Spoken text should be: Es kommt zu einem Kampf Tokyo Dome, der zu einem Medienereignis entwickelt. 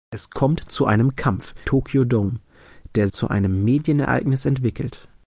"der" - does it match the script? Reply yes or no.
yes